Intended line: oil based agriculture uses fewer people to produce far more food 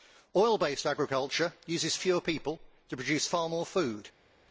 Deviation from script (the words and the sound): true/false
false